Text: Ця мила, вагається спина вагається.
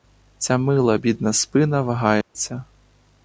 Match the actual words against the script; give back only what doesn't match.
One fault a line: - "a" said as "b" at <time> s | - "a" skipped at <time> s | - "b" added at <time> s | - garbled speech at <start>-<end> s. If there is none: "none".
- "вагається" said as "бідна" at 0.9 s